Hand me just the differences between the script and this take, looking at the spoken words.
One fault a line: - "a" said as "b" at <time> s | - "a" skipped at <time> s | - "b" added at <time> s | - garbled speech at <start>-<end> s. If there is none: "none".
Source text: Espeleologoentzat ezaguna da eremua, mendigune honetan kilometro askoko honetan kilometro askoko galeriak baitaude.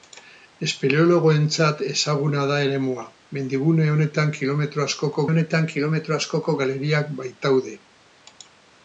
none